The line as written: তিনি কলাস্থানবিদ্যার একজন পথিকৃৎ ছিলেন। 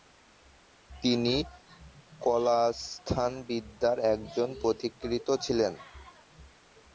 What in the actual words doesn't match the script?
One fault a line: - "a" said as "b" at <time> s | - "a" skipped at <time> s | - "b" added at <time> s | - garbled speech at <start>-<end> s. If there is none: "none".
none